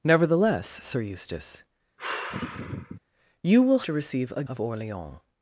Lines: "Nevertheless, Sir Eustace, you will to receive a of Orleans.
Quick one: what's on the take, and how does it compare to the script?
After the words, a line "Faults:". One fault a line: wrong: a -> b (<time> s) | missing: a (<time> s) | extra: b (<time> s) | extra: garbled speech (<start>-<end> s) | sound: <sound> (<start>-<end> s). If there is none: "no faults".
"Nevertheless, Sir Eustace, you will to receive a of Orleans.
Faults:
sound: sigh (2.0-3.0 s)